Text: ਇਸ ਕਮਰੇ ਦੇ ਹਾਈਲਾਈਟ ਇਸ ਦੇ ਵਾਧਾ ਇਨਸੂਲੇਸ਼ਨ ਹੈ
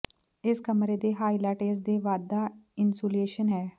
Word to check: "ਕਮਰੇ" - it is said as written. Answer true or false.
true